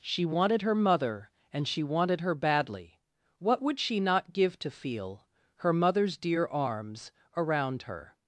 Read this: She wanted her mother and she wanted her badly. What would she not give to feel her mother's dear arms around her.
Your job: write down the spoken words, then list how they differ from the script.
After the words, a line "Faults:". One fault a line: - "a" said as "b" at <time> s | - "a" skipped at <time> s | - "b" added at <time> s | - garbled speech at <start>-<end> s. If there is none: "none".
She wanted her mother and she wanted her badly. What would she not give to feel her mother's dear arms around her.
Faults:
none